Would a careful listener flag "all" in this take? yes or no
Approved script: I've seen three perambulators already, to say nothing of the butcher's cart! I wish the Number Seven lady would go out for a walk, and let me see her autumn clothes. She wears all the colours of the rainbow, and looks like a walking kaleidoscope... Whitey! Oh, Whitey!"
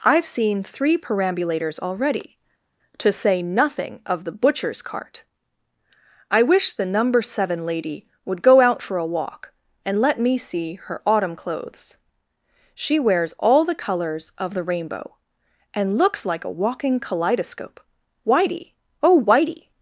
no